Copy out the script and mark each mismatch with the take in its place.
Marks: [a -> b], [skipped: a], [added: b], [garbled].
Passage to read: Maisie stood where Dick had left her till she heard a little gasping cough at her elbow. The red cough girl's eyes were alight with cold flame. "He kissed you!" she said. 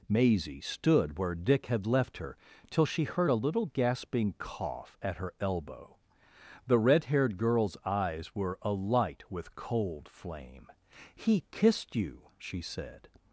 Maisie stood where Dick had left her till she heard a little gasping cough at her elbow. The red [cough -> haired] girl's eyes were alight with cold flame. "He kissed you!" she said.